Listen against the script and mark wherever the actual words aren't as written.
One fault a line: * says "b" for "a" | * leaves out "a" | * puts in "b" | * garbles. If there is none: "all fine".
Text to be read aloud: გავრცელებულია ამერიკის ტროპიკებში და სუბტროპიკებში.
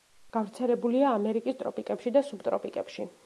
all fine